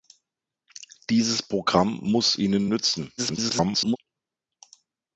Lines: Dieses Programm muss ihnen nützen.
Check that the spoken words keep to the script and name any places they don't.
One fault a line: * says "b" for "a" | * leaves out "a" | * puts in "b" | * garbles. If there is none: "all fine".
* garbles